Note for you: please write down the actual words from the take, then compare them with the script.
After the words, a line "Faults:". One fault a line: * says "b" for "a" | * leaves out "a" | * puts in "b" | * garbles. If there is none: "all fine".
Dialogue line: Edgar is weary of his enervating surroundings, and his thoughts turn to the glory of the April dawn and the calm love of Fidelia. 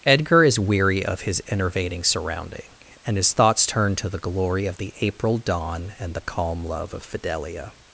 Edgar is weary of his enervating surrounding, and his thoughts turn to the glory of the April dawn and the calm love of Fidelia.
Faults:
* says "surrounding" for "surroundings"